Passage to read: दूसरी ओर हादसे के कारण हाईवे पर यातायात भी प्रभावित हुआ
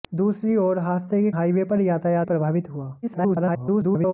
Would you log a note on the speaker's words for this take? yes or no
yes